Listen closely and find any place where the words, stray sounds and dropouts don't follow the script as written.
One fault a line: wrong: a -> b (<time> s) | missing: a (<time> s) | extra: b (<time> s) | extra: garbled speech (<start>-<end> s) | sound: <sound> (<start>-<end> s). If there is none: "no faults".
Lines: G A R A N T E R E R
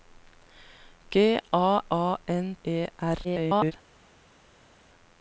missing: R (1.8 s)
missing: T E R (2.6 s)
extra: garbled speech (3.2-3.7 s)